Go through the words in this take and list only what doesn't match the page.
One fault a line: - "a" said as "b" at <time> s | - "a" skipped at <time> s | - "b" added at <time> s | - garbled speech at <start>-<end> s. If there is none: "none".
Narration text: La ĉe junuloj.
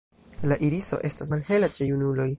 - "iriso estas malhela" added at 0.7 s